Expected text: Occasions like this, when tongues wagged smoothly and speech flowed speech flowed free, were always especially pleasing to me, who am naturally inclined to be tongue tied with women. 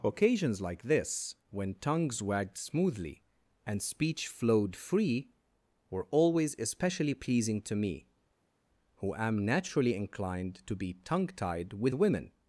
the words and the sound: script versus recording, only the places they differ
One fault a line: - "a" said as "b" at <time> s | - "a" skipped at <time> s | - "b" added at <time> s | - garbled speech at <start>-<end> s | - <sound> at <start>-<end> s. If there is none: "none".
- "speech flowed" skipped at 4.8 s